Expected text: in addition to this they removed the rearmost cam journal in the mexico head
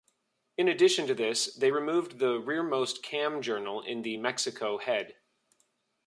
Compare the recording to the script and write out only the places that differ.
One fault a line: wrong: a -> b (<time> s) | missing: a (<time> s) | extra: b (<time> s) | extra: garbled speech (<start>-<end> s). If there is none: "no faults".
no faults